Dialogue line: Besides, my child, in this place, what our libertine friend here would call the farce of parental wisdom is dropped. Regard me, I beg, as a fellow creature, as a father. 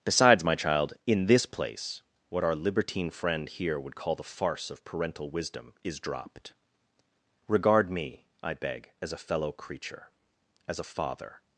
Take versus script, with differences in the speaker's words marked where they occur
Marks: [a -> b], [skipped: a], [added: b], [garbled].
Besides, my child, in this place, what our libertine friend here would call the farce of parental wisdom is dropped. Regard me, I beg, as a fellow creature, as a father.